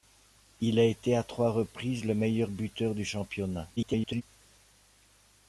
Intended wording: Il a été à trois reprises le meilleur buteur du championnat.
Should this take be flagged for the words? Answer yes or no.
yes